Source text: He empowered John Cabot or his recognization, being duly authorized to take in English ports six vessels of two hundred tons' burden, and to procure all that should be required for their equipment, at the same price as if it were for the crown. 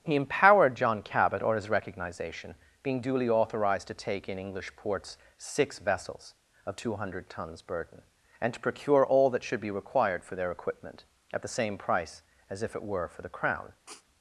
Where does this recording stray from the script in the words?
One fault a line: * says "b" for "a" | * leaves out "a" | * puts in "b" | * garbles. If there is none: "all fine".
all fine